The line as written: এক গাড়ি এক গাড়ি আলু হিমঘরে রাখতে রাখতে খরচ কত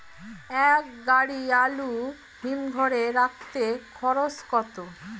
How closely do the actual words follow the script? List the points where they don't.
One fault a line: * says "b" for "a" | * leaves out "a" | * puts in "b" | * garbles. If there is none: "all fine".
* leaves out "এক গাড়ি"
* leaves out "রাখতে"